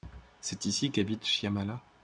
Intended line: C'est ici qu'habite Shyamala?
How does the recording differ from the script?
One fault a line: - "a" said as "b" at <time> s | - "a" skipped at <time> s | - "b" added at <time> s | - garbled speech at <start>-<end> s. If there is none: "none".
none